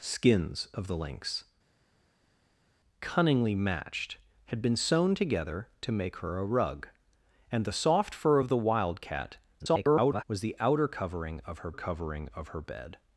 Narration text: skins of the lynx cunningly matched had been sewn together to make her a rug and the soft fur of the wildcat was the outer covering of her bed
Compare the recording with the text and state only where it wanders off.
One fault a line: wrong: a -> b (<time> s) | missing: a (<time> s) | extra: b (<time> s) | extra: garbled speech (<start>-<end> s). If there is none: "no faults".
extra: garbled speech (9.6-10.2 s)
extra: covering of her (11.7 s)